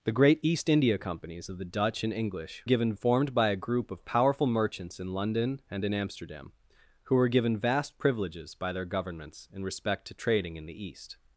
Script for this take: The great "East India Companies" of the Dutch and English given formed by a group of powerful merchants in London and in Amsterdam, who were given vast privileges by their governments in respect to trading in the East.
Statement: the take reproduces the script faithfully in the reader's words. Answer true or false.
true